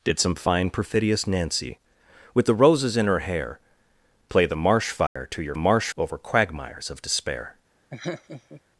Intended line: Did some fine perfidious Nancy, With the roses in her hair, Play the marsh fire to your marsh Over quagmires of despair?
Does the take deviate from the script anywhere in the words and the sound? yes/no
yes